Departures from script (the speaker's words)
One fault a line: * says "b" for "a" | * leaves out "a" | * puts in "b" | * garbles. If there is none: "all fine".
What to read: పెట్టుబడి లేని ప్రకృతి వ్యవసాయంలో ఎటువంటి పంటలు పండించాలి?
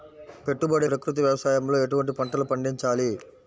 * leaves out "లేని"